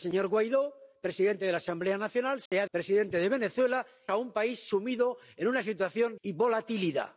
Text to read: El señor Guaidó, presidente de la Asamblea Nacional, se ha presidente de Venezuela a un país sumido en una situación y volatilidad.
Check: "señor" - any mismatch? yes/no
no